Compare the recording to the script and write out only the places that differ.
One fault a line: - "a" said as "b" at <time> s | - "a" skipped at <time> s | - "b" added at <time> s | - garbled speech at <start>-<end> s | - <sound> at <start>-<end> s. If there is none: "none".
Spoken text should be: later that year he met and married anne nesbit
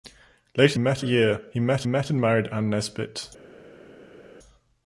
- "that" said as "met" at 0.8 s
- "met" added at 1.8 s